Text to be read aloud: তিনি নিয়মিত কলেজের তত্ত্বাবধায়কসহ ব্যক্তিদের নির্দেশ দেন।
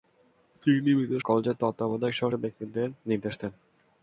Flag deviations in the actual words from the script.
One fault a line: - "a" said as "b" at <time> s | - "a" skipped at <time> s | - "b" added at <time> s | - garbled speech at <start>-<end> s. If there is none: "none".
none